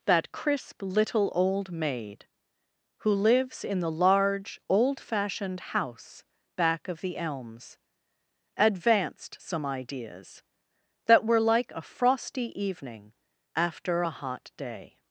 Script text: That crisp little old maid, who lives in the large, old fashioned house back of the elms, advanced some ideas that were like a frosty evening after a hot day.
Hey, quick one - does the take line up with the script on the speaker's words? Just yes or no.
yes